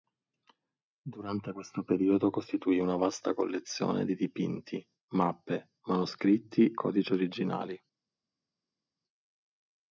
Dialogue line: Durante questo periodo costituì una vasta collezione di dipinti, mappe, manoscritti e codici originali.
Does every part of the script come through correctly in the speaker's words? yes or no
no